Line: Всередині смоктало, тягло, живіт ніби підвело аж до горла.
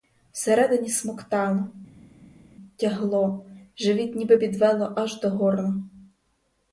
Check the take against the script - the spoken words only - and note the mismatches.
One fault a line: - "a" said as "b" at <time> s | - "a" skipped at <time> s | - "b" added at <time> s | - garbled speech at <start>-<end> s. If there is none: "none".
none